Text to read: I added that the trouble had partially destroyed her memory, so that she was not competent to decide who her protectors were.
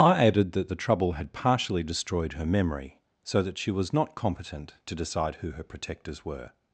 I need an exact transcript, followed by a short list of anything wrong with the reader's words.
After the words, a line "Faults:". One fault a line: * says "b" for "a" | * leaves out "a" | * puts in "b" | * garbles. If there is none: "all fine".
I added that the trouble had partially destroyed her memory, so that she was not competent to decide who her protectors were.
Faults:
all fine